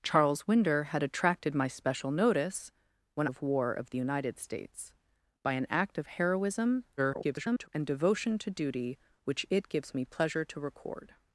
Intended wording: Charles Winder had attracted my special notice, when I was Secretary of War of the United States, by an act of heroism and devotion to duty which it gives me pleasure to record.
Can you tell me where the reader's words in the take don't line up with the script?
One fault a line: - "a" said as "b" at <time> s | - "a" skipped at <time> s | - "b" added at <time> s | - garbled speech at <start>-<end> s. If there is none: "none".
- "I was Secretary" skipped at 3.3 s
- garbled speech at 7.0-7.7 s